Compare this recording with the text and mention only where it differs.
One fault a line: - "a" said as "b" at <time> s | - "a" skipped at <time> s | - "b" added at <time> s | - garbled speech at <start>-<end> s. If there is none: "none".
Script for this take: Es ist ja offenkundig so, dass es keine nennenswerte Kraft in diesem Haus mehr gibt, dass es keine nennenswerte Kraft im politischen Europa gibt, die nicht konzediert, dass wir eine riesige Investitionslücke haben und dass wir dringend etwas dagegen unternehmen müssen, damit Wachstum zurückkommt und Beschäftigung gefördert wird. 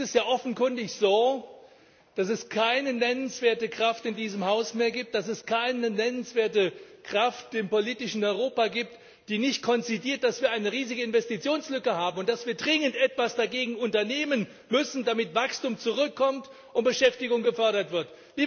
none